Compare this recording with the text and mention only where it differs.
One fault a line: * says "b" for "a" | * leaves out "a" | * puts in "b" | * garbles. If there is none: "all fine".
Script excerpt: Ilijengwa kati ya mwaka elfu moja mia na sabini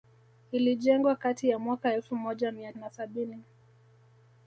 all fine